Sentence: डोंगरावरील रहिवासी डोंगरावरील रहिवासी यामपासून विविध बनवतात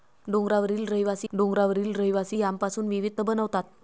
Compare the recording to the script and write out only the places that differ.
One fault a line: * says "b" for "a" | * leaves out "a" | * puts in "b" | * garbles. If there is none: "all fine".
all fine